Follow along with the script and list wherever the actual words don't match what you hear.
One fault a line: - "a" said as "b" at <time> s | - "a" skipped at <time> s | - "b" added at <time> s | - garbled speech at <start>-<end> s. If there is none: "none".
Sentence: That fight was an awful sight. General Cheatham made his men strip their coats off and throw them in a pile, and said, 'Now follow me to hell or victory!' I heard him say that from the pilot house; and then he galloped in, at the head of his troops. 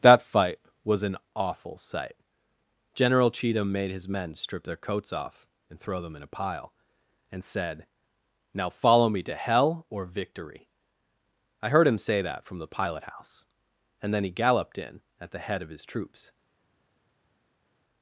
none